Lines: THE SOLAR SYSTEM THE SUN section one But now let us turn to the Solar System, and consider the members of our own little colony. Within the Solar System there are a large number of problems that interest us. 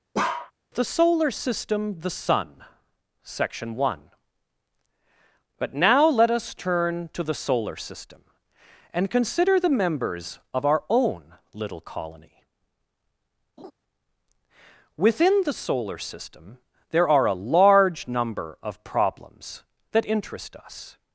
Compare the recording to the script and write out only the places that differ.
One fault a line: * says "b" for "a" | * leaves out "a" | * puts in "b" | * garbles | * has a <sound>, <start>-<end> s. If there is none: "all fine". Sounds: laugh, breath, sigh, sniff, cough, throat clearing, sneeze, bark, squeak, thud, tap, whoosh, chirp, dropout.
* has a bark, 0.1-0.5 s
* has a laugh, 13.6-13.7 s